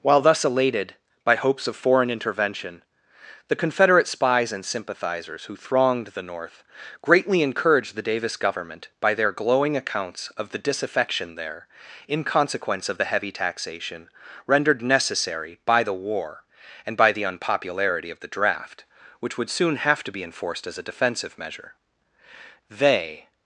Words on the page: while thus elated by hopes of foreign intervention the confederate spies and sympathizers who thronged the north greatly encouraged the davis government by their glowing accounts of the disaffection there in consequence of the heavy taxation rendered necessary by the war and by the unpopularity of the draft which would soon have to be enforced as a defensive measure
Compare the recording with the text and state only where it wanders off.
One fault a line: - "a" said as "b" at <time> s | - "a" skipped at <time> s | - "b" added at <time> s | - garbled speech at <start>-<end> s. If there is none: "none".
- "they" added at 22.7 s